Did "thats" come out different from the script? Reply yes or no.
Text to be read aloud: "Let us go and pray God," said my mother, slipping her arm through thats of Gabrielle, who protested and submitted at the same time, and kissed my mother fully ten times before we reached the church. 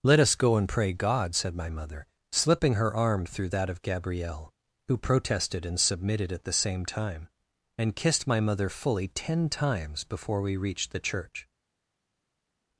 yes